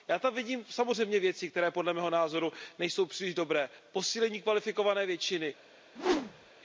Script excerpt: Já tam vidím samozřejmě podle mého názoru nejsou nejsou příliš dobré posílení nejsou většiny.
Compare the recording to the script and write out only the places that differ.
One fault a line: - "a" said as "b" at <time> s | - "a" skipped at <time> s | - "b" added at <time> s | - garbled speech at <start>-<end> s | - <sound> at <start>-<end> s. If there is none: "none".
- "věci které" added at 1.2 s
- "nejsou" skipped at 3.1 s
- "nejsou" said as "kvalifikované" at 4.4 s
- whoosh at 6.0-6.5 s